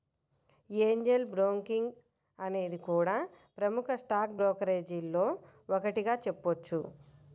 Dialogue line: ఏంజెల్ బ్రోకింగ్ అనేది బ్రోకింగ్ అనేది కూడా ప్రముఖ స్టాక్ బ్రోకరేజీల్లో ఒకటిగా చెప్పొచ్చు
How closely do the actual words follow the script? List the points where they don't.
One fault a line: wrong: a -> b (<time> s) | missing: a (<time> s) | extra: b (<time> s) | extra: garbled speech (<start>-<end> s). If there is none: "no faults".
missing: బ్రోకింగ్ అనేది (2.8 s)